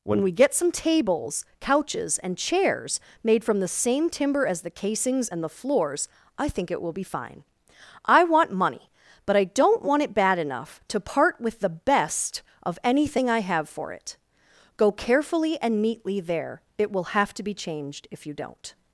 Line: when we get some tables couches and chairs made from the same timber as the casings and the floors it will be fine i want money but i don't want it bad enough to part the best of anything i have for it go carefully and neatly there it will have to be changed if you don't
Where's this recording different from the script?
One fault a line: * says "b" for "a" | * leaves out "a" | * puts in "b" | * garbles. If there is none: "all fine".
* puts in "i think"
* puts in "with"